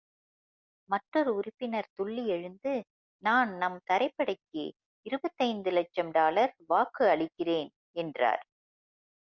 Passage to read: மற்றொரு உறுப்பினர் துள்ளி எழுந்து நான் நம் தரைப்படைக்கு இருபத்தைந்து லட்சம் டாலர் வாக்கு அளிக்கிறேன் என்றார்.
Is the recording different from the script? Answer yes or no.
no